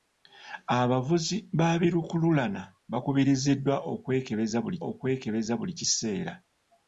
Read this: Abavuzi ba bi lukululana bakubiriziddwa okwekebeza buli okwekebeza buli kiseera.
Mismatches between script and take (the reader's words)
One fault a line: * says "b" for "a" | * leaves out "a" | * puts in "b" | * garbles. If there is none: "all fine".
all fine